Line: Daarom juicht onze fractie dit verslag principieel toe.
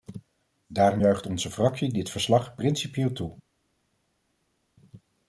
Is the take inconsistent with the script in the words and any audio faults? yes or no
no